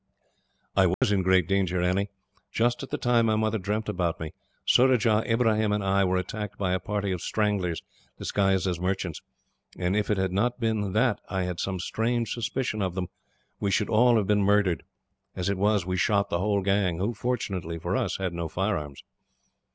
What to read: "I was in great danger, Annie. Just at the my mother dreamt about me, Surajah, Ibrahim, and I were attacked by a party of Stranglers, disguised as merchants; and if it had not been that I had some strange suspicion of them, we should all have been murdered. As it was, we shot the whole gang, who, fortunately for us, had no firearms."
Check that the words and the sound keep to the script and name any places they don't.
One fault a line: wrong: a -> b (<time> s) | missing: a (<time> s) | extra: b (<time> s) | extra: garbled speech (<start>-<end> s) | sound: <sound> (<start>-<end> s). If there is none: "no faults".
sound: dropout (0.9-1.0 s)
extra: time (3.0 s)